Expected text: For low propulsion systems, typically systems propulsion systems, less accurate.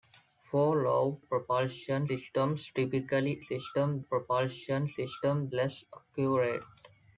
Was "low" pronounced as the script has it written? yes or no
yes